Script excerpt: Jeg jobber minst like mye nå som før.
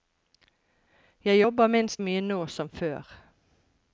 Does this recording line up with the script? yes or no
no